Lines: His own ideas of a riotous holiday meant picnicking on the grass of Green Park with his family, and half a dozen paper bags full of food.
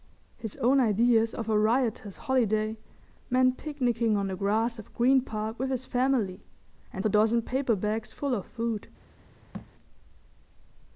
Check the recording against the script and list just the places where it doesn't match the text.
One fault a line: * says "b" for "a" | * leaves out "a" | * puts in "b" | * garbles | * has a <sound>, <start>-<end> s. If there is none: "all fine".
* leaves out "half"
* has a thud, 9.5-9.7 s